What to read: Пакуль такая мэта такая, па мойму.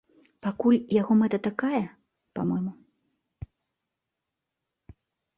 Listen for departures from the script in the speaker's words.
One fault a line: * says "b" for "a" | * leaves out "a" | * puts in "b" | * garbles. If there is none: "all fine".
* says "яго" for "такая"